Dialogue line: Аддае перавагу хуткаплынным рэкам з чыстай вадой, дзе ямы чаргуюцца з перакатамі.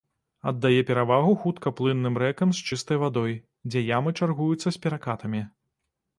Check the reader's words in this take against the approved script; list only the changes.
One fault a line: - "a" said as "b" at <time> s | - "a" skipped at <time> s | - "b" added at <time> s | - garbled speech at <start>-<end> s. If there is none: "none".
none